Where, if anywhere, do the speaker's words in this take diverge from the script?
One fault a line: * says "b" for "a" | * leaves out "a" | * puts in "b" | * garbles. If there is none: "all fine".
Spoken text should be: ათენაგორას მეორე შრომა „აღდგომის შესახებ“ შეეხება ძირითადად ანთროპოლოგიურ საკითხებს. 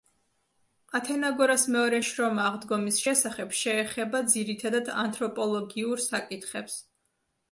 all fine